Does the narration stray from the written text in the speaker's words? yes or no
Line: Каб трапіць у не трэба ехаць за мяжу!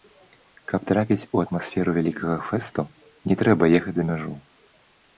yes